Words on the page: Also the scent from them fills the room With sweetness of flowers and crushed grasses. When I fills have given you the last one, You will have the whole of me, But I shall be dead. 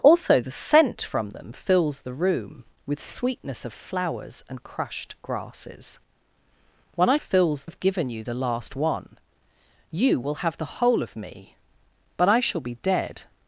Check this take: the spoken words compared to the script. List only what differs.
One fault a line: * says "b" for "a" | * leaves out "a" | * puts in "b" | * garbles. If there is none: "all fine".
all fine